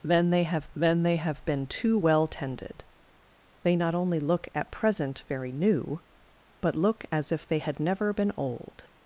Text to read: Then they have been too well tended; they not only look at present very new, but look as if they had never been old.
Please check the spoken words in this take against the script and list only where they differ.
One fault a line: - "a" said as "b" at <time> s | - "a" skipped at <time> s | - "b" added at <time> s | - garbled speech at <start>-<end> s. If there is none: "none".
- "then they have" added at 0.7 s